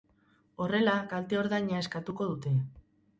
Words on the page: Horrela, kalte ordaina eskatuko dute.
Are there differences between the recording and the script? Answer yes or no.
no